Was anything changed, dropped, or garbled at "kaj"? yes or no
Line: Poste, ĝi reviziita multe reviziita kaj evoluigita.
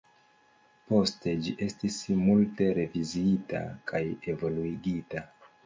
no